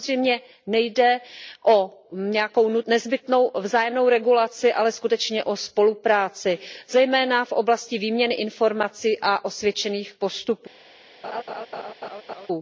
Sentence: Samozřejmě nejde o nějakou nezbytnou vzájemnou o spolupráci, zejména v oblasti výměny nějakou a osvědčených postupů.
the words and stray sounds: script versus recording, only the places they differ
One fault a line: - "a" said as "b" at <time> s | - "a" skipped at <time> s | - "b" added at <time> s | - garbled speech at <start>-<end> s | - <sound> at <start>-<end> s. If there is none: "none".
- "regulaci ale skutečně" added at 4.1 s
- "nějakou" said as "informací" at 8.3 s
- laugh at 11.2-12.5 s